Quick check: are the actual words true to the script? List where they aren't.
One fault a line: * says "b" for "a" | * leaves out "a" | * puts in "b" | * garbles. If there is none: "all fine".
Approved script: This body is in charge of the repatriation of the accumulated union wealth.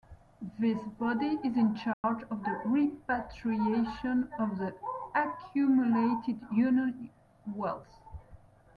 all fine